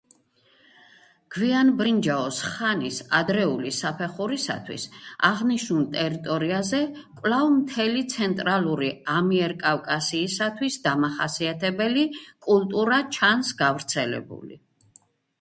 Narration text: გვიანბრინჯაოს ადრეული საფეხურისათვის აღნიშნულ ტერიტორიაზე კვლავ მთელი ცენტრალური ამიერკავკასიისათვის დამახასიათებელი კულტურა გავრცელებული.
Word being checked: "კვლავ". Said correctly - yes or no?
yes